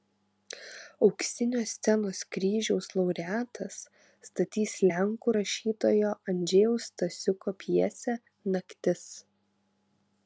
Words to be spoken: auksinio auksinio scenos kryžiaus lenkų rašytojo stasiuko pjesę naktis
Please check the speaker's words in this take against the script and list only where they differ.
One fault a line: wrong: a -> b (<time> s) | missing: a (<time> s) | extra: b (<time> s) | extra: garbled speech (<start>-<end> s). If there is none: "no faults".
missing: auksinio (1.6 s)
extra: laureatas statys (3.0 s)
extra: andžejaus (6.3 s)